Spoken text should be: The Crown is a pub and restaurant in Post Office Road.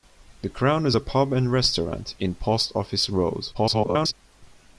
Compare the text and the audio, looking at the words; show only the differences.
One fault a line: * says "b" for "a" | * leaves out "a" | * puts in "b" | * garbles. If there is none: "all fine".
* garbles